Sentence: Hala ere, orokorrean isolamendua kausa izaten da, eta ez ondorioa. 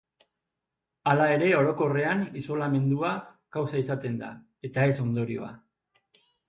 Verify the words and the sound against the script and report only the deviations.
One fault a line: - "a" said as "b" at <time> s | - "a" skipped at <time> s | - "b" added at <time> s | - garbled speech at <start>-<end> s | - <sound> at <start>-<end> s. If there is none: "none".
none